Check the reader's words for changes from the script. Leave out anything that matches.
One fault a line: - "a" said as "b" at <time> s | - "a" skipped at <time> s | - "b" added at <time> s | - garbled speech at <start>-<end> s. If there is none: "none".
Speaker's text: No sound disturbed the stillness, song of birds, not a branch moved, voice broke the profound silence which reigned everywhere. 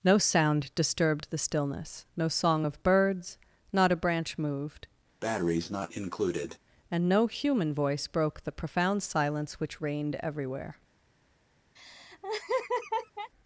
- "no" added at 2.2 s
- "and no human" added at 6.9 s